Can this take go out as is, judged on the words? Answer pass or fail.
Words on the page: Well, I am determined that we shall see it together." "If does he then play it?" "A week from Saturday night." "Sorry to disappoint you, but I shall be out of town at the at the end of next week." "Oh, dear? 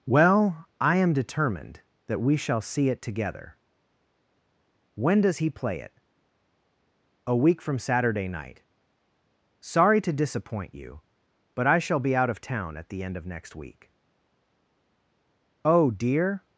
fail